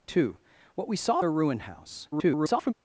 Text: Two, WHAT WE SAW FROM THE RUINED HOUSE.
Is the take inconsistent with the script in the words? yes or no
yes